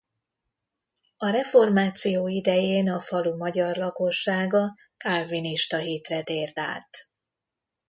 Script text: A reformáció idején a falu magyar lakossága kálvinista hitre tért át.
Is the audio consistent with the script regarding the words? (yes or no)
yes